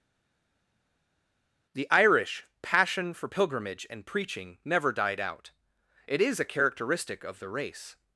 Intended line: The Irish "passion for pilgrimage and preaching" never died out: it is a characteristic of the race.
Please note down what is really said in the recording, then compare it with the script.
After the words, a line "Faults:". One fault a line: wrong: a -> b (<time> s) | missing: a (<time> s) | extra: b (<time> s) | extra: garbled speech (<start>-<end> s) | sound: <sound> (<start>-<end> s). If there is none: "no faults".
The Irish "passion for pilgrimage and preaching" never died out: it is a characteristic of the race.
Faults:
no faults